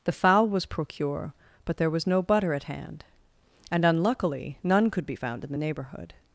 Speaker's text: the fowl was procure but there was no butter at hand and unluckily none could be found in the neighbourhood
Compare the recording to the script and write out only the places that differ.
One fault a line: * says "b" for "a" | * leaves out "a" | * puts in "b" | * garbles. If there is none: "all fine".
all fine